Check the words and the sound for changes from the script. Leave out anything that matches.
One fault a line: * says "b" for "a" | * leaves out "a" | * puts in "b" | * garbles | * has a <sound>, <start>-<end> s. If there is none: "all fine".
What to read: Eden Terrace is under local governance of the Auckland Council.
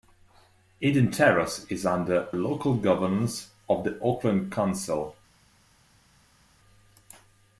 all fine